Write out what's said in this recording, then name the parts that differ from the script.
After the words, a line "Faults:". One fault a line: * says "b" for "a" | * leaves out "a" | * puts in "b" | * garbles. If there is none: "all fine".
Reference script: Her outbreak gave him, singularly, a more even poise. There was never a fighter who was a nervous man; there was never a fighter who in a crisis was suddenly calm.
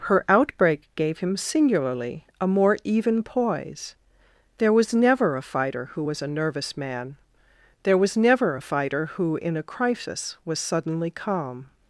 Her outbreak gave him, singularly, a more even poise. There was never a fighter who was a nervous man; there was never a fighter who in a crisis was suddenly calm.
Faults:
all fine